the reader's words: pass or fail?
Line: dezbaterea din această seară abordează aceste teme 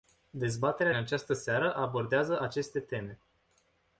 fail